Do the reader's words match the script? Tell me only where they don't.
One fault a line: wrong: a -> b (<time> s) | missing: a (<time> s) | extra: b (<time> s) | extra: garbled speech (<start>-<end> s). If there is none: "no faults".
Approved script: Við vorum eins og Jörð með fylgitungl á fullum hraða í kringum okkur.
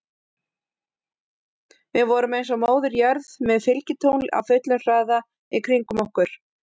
extra: Móðir (2.6 s)